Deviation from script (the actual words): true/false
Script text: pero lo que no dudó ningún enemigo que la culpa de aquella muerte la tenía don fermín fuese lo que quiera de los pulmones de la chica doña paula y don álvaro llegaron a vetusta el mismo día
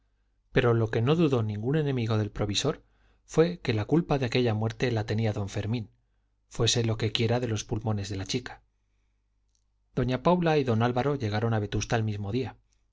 true